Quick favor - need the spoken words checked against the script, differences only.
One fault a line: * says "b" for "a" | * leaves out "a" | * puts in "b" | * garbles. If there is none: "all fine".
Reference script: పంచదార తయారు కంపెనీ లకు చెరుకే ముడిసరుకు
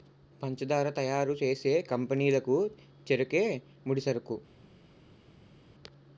* puts in "చేసే"